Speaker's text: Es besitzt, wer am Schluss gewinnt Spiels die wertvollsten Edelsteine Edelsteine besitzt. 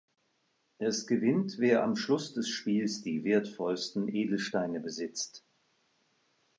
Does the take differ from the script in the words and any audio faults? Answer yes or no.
yes